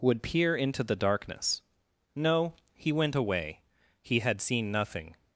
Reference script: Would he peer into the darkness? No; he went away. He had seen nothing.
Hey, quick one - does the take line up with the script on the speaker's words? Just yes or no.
no